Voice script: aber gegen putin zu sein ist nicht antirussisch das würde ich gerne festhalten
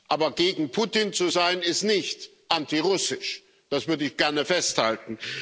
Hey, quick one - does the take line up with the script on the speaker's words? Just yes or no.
yes